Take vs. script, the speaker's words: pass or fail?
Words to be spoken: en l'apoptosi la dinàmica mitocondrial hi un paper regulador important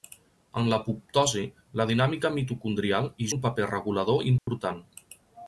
pass